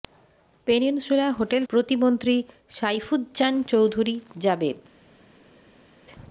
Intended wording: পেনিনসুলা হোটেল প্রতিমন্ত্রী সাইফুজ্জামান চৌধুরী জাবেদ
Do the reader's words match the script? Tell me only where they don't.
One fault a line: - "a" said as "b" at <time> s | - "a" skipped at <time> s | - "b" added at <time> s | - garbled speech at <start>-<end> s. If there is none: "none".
none